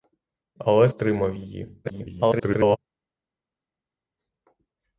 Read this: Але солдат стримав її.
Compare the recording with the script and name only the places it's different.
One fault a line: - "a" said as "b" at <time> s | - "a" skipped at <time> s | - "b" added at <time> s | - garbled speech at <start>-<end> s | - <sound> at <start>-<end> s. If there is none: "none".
- "солдат" skipped at 0.9 s
- garbled speech at 1.8-2.8 s